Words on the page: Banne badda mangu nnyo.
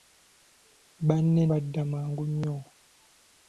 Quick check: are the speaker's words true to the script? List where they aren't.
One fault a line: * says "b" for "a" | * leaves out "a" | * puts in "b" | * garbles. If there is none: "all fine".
all fine